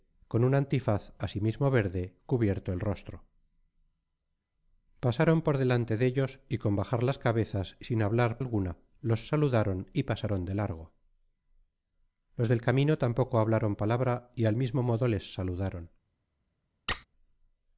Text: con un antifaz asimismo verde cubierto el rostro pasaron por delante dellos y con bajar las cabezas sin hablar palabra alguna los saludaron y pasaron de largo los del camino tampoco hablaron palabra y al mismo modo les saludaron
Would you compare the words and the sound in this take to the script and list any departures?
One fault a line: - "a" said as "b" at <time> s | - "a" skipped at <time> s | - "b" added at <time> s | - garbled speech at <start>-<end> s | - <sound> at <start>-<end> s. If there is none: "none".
- "palabra" skipped at 8.4 s
- squeak at 16.9-17.1 s